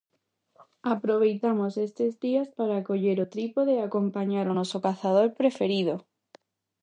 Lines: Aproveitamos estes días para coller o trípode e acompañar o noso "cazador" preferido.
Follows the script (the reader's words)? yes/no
yes